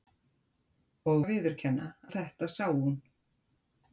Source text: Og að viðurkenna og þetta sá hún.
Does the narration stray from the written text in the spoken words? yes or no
no